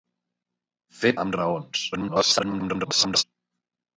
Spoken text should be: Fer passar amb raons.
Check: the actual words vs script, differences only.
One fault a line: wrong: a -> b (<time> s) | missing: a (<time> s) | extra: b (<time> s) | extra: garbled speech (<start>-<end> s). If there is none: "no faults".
missing: passar (1.1 s)
extra: garbled speech (1.9-3.2 s)